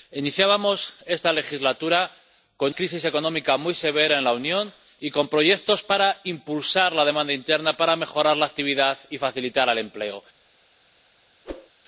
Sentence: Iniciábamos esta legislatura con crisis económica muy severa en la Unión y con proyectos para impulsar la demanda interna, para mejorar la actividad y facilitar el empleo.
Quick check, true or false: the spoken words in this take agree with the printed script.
true